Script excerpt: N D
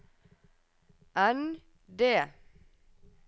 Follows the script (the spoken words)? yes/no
yes